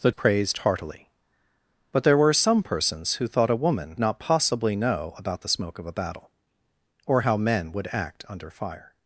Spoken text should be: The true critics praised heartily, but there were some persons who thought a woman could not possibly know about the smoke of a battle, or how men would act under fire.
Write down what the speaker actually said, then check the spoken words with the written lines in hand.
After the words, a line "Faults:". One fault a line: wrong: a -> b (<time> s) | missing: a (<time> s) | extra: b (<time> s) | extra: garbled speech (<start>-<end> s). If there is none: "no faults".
The praised heartily, but there were some persons who thought a woman not possibly know about the smoke of a battle, or how men would act under fire.
Faults:
missing: true critics (0.1 s)
missing: could (3.9 s)